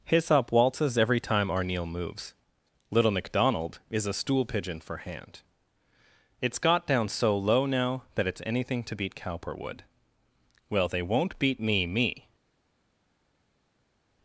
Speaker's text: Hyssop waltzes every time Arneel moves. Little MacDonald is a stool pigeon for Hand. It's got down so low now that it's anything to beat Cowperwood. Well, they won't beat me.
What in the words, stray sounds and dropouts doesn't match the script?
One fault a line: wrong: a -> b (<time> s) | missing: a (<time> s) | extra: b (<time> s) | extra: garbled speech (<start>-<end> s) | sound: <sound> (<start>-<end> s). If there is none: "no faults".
extra: me (11.9 s)